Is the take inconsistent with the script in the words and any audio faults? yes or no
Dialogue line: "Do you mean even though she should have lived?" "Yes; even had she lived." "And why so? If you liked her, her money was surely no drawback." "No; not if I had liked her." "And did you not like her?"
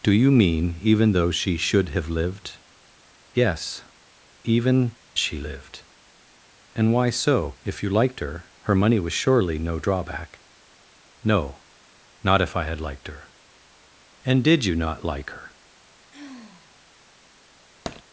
yes